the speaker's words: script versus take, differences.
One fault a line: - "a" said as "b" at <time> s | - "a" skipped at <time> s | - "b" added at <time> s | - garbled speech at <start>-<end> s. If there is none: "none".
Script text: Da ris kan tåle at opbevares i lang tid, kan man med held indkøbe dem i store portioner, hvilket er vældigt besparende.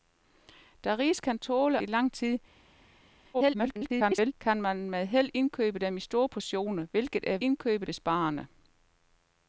- "at opbevares" skipped at 1.8 s
- garbled speech at 3.3-4.3 s
- "vældigt" said as "indkøbe" at 7.4 s